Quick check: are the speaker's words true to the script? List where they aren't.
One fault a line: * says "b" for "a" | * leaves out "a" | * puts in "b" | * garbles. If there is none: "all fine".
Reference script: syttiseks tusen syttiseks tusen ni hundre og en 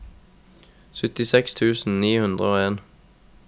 * leaves out "syttiseks tusen"